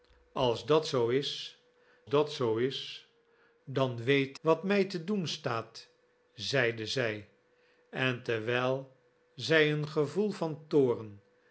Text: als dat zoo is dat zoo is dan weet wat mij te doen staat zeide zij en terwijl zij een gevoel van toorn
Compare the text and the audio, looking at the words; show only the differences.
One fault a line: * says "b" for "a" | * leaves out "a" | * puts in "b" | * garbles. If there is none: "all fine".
all fine